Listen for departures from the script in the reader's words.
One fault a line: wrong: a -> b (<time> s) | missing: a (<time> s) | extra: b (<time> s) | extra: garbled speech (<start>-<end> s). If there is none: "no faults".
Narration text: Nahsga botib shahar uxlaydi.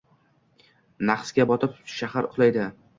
no faults